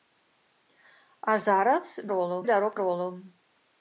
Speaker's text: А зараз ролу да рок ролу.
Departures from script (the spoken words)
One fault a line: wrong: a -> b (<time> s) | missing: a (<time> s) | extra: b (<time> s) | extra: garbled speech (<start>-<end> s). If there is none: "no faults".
no faults